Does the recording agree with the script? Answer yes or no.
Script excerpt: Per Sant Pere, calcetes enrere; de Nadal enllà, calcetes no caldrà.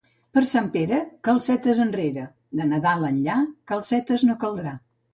yes